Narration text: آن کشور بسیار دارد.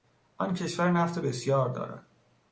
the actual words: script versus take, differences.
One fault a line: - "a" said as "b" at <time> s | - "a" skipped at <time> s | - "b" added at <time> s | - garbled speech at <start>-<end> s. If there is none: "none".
- "نفت" added at 0.9 s